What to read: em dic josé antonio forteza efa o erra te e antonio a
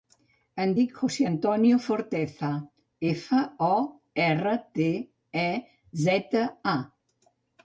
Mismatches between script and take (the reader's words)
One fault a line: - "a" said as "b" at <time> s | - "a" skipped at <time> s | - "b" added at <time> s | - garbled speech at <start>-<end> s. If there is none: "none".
- "antonio" said as "zeta" at 6.1 s